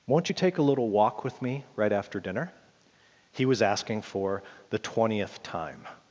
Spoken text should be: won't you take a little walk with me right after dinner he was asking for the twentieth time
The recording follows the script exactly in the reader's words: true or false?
true